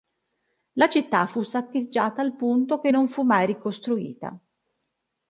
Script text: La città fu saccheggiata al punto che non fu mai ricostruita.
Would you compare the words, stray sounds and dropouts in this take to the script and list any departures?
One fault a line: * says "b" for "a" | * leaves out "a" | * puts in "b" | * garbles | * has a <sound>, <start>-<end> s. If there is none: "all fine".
all fine